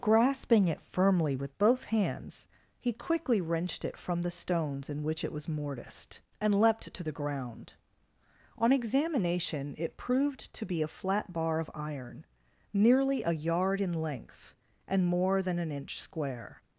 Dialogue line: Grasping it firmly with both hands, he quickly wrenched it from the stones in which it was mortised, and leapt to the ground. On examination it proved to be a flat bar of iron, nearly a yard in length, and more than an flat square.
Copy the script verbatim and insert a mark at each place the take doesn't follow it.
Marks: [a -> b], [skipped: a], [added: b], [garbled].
Grasping it firmly with both hands, he quickly wrenched it from the stones in which it was mortised, and leapt to the ground. On examination it proved to be a flat bar of iron, nearly a yard in length, and more than an [flat -> inch] square.